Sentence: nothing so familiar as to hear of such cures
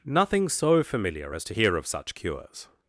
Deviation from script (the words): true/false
false